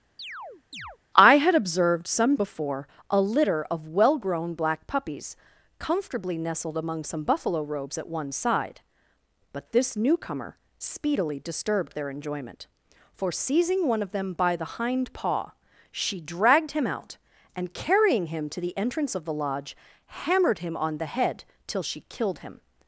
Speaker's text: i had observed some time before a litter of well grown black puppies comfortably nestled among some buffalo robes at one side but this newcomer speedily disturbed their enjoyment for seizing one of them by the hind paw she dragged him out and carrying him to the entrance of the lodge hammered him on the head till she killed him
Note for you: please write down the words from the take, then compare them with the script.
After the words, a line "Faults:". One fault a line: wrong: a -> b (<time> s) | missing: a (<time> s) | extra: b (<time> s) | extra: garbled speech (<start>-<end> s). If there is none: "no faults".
i had observed some before a litter of well grown black puppies comfortably nestled among some buffalo robes at one side but this newcomer speedily disturbed their enjoyment for seizing one of them by the hind paw she dragged him out and carrying him to the entrance of the lodge hammered him on the head till she killed him
Faults:
missing: time (2.4 s)